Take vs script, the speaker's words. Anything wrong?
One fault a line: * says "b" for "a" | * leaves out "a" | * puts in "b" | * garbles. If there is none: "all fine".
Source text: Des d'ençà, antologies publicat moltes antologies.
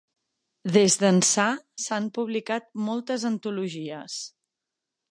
* says "s'han" for "antologies"